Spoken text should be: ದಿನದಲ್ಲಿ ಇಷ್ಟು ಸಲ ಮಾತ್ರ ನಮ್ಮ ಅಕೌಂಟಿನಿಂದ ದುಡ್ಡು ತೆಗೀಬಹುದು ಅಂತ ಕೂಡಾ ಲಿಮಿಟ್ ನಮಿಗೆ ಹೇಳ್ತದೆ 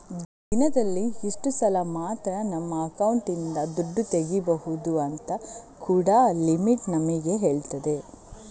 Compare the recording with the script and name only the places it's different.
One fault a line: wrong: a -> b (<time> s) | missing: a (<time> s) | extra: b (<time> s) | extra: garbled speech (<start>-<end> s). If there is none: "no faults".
no faults